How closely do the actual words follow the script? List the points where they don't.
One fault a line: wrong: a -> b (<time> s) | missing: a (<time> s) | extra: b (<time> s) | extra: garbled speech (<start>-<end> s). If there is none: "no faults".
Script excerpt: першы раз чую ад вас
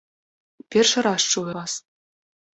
missing: ад (1.4 s)